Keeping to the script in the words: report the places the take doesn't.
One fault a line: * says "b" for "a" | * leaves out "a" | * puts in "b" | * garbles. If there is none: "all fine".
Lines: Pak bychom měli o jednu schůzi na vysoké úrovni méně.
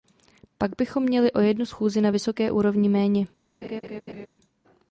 all fine